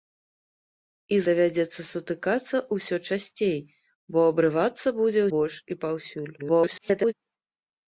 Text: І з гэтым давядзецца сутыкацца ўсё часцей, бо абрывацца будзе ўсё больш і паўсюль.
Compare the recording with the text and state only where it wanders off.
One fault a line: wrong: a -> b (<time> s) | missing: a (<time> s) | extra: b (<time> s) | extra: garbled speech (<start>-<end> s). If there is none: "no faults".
missing: з гэтым (1.2 s)
missing: ўсё (5.2 s)
extra: garbled speech (6.4-7.1 s)